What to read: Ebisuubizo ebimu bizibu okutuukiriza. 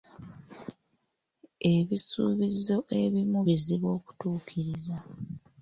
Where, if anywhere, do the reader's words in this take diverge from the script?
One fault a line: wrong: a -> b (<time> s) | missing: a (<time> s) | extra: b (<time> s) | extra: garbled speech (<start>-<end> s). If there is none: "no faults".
no faults